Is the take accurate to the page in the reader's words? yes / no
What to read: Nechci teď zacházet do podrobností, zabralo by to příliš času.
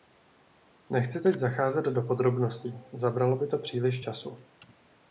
yes